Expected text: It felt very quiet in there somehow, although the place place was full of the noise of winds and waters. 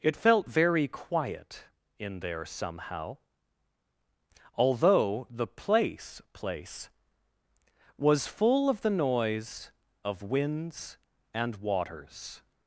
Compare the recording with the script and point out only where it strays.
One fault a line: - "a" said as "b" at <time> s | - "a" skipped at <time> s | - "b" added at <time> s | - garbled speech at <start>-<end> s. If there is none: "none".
none